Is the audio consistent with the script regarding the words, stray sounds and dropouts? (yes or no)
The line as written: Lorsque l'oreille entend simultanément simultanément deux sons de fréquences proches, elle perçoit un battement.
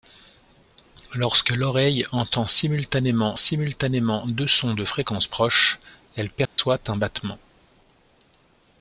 no